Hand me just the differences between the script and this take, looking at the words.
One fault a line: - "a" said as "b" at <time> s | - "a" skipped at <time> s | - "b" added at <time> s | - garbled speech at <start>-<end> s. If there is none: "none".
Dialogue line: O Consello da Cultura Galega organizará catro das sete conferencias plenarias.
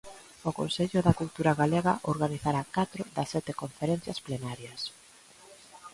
none